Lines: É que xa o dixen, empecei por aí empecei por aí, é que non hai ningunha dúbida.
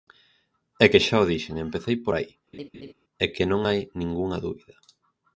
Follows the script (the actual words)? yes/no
no